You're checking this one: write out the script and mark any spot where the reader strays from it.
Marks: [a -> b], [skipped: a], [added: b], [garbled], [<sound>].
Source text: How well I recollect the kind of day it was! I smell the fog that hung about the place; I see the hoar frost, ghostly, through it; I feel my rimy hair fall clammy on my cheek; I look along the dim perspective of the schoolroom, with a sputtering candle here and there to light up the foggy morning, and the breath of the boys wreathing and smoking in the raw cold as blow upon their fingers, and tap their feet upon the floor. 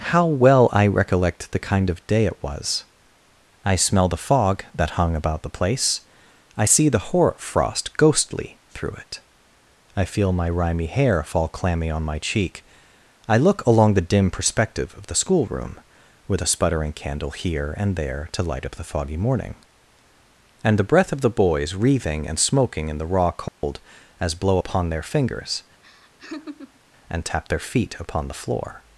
How well I recollect the kind of day it was! I smell the fog that hung about the place; I see the hoar frost, ghostly, through it; I feel my rimy hair fall clammy on my cheek; I look along the dim perspective of the schoolroom, with a sputtering candle here and there to light up the foggy morning, and the breath of the boys wreathing and smoking in the raw cold [dropout] as blow upon their fingers, [laugh] and tap their feet upon the floor.